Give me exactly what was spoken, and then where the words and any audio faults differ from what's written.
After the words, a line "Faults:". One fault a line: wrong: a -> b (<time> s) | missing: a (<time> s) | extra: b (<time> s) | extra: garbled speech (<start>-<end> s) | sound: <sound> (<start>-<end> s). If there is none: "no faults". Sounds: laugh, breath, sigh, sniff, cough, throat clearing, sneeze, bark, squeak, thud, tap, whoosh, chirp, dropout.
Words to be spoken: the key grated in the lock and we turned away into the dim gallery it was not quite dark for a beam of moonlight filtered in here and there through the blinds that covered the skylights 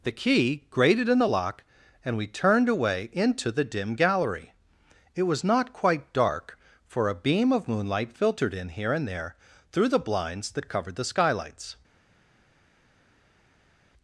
the key grated in the lock and we turned away into the dim gallery it was not quite dark for a beam of moonlight filtered in here and there through the blinds that covered the skylights
Faults:
no faults